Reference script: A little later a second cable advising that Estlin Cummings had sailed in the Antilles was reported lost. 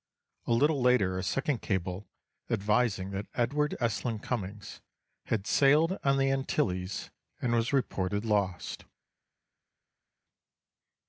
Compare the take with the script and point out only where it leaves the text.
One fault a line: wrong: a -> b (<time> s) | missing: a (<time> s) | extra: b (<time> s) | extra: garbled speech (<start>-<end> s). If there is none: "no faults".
extra: Edward (3.4 s)
wrong: in -> on (6.0 s)
extra: and (7.4 s)